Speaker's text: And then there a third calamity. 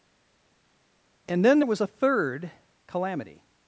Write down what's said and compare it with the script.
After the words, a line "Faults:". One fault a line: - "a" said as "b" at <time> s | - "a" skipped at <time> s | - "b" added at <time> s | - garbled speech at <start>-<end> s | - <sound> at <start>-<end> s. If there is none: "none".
And then there was a third calamity.
Faults:
- "was" added at 1.7 s